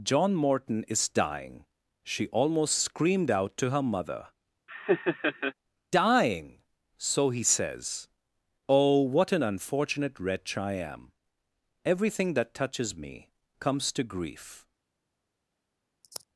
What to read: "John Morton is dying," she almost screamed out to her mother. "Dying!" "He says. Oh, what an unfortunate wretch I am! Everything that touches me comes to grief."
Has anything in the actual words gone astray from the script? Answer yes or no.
yes